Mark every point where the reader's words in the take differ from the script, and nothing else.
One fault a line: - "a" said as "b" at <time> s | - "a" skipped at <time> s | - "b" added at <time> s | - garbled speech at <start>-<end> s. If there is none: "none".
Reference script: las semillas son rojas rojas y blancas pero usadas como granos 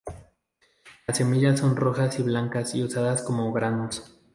- "rojas" skipped at 2.2 s
- "pero" said as "y" at 2.7 s